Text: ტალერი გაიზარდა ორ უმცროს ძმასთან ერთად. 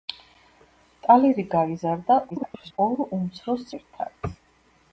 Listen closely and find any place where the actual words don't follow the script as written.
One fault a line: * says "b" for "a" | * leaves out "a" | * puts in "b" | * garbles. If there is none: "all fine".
* garbles
* leaves out "ძმასთან"